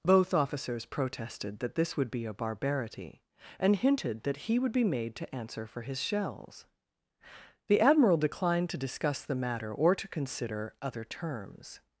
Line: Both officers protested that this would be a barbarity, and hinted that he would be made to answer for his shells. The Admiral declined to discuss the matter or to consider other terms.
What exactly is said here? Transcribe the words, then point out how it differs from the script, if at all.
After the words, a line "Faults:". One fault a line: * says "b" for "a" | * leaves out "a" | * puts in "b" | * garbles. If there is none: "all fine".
Both officers protested that this would be a barbarity, and hinted that he would be made to answer for his shells. The Admiral declined to discuss the matter or to consider other terms.
Faults:
all fine